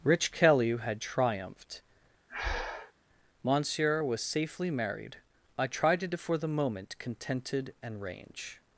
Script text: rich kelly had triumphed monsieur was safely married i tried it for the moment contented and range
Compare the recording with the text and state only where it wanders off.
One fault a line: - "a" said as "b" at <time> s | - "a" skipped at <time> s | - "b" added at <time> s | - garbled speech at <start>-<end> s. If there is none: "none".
none